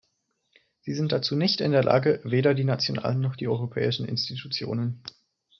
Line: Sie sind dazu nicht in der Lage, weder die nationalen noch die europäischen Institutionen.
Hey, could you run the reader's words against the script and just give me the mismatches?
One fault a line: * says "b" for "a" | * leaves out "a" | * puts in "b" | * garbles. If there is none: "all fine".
all fine